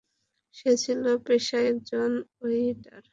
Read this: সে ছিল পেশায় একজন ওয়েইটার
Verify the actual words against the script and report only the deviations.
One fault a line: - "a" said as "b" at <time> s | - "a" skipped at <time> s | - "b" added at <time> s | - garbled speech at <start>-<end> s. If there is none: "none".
none